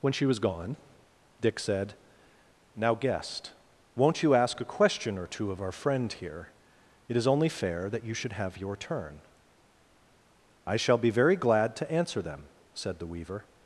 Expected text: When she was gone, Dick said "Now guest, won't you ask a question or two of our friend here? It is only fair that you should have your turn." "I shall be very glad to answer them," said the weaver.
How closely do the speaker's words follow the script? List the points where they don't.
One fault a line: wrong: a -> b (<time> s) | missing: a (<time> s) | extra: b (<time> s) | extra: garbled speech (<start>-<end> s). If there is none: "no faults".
no faults